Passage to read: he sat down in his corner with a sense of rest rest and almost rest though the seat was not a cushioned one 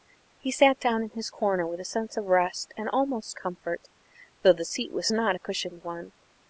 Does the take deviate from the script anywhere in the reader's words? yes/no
yes